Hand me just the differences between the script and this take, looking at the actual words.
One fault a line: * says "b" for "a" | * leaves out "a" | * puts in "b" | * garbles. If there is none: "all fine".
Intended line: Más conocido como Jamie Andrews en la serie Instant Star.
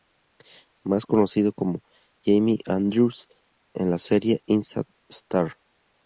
all fine